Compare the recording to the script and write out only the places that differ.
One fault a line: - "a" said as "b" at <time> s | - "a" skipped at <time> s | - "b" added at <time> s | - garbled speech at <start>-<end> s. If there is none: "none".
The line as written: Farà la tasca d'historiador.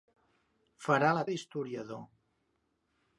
- "tasca" skipped at 1.3 s